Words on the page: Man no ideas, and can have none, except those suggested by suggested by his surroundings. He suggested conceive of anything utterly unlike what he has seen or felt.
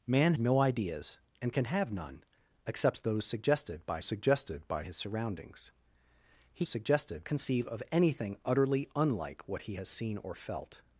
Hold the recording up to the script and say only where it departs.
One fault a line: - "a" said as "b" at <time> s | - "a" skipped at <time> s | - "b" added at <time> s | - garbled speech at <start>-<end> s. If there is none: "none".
none